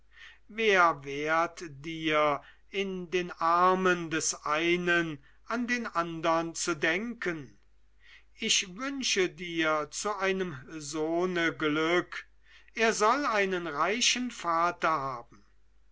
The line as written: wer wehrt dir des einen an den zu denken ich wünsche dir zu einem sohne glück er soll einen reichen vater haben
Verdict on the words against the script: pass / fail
fail